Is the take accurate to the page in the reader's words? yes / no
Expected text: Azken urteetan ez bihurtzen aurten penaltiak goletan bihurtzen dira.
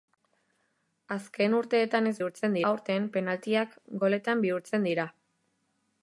yes